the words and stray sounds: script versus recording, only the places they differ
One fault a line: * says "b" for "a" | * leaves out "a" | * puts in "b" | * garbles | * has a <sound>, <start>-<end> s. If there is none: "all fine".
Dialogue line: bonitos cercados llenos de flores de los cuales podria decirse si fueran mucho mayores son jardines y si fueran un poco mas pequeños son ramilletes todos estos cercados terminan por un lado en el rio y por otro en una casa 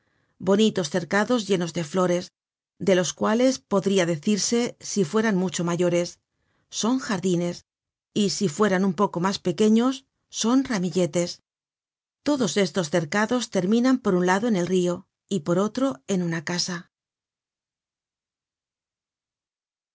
all fine